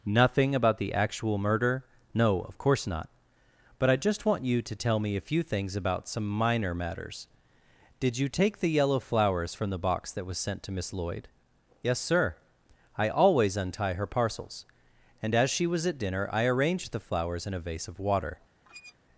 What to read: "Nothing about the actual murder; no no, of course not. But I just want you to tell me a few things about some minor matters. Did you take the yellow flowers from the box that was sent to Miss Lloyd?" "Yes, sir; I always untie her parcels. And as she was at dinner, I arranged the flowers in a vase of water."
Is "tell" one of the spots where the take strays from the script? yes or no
no